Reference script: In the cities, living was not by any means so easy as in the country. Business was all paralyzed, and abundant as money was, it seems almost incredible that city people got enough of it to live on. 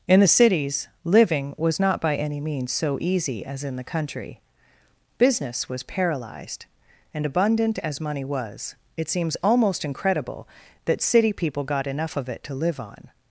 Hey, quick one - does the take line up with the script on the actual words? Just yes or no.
no